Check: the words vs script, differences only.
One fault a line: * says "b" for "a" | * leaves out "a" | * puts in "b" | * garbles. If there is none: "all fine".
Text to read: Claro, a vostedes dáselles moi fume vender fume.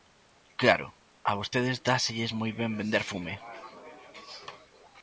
* says "ben" for "fume"